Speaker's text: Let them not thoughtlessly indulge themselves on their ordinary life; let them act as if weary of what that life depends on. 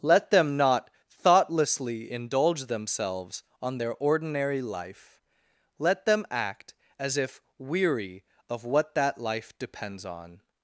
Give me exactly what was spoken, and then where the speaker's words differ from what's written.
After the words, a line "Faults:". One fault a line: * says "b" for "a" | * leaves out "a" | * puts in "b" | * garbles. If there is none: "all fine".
Let them not thoughtlessly indulge themselves on their ordinary life; let them act as if weary of what that life depends on.
Faults:
all fine